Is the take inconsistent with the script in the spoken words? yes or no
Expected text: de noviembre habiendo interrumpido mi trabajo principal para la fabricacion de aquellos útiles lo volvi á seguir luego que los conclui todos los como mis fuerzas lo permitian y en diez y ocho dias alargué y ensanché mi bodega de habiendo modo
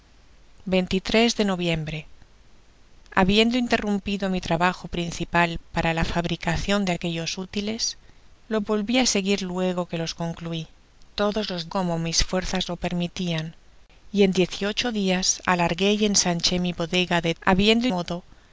no